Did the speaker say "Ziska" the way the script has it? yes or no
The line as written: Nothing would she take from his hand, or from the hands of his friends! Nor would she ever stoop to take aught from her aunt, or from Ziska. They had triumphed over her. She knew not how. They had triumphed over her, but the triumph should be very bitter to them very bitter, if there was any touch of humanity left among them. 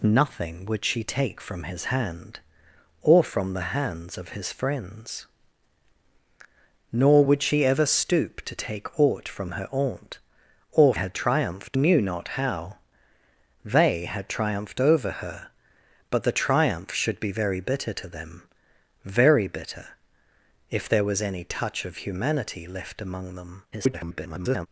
no